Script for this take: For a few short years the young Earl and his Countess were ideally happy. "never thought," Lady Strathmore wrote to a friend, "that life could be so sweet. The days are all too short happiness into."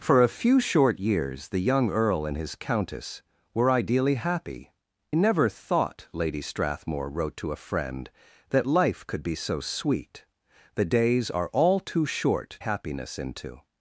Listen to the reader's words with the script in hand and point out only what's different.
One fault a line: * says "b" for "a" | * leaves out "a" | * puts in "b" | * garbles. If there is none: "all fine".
all fine